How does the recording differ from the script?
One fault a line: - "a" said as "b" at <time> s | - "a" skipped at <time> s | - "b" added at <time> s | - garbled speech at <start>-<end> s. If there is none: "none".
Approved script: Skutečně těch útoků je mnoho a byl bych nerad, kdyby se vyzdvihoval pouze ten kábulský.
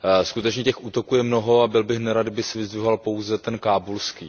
none